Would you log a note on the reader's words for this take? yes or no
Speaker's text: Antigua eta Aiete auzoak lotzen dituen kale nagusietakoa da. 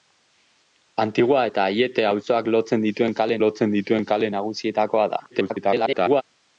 yes